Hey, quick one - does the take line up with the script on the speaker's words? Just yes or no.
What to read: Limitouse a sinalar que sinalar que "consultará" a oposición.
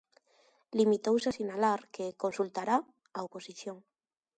no